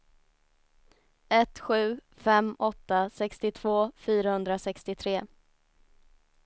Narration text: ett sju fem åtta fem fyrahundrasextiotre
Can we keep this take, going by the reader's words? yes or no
no